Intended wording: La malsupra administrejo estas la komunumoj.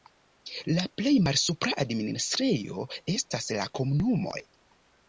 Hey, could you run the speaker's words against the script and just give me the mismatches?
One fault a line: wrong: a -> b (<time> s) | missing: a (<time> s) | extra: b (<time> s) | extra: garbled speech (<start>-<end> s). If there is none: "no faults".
extra: plej (1.0 s)